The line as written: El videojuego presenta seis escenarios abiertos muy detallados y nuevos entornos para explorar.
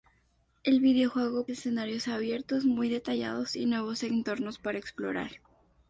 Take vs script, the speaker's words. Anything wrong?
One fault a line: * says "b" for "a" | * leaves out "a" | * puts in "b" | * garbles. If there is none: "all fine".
* leaves out "presenta seis"